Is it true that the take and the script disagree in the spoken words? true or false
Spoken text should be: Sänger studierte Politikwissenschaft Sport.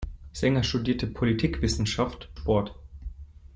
false